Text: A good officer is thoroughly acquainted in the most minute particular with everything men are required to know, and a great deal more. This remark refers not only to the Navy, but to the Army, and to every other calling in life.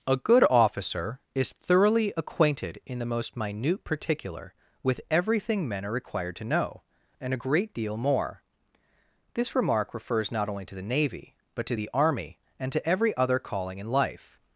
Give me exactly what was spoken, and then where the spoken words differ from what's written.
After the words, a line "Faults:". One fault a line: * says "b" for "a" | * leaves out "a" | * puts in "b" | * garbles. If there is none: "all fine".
A good officer is thoroughly acquainted in the most minute particular with everything men are required to know, and a great deal more. This remark refers not only to the Navy, but to the Army, and to every other calling in life.
Faults:
all fine